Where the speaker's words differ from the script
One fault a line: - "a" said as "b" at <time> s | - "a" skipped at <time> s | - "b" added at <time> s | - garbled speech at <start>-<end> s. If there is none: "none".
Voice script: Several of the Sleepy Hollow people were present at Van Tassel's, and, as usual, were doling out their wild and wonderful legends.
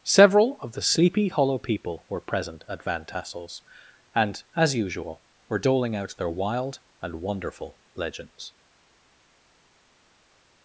none